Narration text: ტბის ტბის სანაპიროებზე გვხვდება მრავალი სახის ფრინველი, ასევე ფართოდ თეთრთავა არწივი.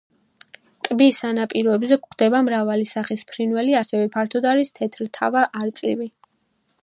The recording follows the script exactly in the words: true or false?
false